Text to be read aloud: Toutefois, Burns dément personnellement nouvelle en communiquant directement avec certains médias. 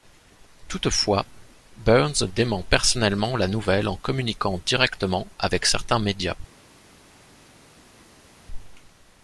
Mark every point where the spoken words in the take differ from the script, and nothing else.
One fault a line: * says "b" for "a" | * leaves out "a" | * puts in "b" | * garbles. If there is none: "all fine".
* puts in "la"